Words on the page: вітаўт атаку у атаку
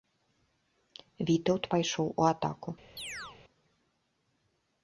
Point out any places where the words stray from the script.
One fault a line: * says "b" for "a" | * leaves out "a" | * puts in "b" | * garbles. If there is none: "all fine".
* says "пайшоў" for "атаку"